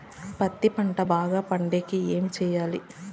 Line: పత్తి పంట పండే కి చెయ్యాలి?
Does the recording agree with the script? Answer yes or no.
no